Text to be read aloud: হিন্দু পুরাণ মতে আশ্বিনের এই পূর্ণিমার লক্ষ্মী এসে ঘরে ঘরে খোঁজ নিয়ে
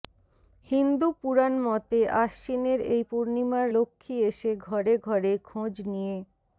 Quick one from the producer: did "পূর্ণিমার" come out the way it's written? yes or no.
yes